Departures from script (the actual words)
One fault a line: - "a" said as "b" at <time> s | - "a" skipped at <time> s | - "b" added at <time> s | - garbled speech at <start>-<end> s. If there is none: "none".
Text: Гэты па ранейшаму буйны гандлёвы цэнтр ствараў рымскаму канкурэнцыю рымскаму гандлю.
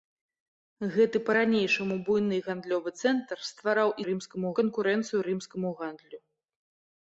none